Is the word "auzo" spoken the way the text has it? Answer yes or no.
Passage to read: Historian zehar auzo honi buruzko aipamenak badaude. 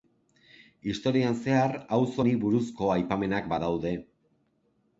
yes